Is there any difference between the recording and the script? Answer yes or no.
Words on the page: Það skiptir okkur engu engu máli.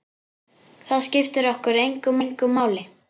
no